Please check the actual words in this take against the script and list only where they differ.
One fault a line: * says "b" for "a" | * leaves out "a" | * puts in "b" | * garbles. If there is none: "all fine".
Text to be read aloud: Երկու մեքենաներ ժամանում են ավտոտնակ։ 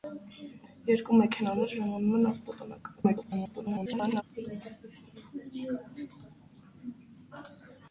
* garbles